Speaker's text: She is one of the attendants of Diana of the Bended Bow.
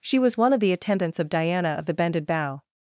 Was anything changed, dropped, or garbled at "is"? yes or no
yes